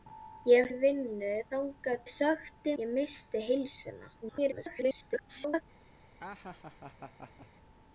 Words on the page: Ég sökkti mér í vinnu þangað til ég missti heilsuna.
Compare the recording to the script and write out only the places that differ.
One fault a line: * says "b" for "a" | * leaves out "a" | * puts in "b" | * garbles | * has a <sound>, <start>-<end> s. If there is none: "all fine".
* leaves out "sökkti mér"
* says "sökkti" for "til"
* garbles
* has a laugh, 6.2-7.5 s